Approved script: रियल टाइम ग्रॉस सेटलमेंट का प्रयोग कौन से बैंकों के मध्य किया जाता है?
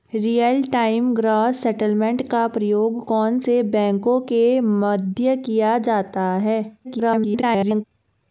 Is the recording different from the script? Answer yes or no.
yes